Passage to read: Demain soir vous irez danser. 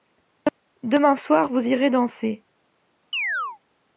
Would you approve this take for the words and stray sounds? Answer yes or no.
no